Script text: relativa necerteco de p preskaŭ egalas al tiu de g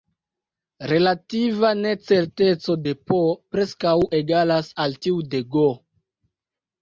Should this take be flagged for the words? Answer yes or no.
no